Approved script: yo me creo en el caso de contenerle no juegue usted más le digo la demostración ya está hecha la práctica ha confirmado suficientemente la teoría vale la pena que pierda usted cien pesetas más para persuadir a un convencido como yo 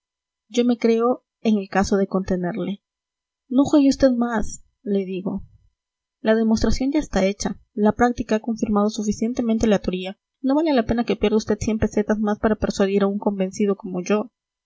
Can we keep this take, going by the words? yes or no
no